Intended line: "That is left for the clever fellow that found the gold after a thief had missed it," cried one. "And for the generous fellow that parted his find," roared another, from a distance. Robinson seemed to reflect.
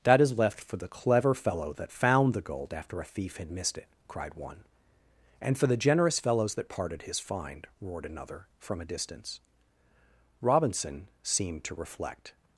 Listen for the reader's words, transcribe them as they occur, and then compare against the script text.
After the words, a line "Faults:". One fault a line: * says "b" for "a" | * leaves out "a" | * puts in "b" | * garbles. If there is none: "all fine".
"That is left for the clever fellow that found the gold after a thief had missed it," cried one. "And for the generous fellows that parted his find," roared another, from a distance. Robinson seemed to reflect.
Faults:
* says "fellows" for "fellow"